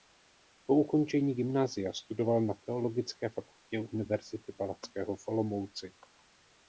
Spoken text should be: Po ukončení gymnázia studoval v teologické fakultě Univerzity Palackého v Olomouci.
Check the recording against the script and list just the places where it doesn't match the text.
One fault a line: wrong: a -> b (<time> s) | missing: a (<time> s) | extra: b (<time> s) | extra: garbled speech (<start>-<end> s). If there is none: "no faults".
wrong: v -> na (2.4 s)